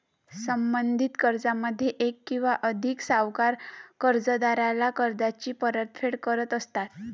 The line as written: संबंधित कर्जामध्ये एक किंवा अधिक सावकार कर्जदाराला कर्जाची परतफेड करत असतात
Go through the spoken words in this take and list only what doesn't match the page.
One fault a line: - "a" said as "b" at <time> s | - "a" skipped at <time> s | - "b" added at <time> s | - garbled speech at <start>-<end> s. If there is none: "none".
none